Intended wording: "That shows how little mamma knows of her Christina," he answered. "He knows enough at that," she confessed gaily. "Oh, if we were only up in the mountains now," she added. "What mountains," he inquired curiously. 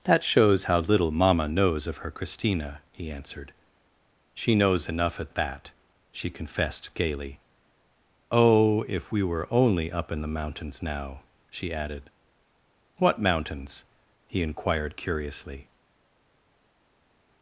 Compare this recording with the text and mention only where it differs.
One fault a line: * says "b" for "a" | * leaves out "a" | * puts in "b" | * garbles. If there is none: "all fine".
* says "She" for "He"